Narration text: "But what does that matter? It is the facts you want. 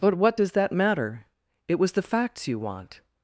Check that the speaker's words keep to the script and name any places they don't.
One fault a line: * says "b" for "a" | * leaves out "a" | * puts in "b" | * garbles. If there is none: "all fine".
* says "was" for "is"